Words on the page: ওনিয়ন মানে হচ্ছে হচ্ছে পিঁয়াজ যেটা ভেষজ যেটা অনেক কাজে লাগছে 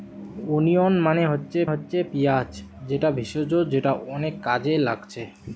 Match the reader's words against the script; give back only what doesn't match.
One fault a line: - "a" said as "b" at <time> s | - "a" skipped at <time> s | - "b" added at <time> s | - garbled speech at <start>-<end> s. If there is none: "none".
none